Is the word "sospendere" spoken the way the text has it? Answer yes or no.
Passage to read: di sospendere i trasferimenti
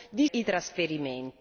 no